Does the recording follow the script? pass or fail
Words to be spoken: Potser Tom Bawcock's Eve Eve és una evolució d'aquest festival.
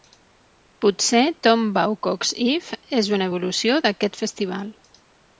fail